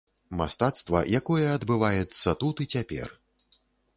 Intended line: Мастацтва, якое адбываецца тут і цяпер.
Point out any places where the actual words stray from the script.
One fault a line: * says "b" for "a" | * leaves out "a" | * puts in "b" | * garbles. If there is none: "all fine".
all fine